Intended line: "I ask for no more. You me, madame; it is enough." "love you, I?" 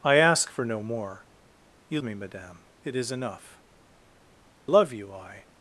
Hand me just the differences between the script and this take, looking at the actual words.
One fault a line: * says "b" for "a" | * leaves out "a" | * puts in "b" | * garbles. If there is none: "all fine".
all fine